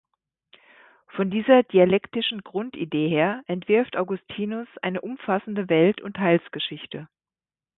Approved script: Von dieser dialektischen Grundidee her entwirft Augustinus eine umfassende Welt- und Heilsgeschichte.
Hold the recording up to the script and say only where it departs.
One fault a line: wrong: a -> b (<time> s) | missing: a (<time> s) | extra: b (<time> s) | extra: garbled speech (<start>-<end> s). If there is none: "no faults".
no faults